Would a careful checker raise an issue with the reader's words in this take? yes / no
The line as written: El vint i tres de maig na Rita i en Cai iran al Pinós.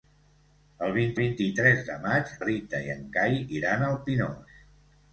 yes